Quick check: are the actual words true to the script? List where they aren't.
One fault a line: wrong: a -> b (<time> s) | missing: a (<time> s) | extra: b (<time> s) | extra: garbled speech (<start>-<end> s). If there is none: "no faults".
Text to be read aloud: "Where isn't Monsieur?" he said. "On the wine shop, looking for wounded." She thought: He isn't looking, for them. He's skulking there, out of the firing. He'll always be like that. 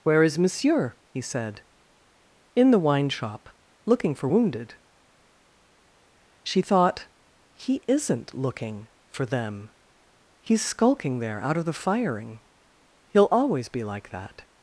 wrong: isn't -> is (0.2 s)
wrong: On -> In (2.5 s)